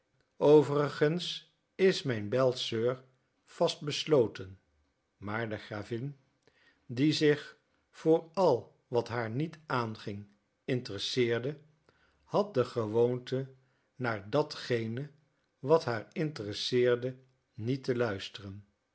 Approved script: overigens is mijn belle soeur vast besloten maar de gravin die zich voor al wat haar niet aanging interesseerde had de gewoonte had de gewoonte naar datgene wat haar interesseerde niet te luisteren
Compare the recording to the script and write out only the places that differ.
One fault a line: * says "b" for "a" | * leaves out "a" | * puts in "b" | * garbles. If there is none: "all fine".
* leaves out "had de gewoonte"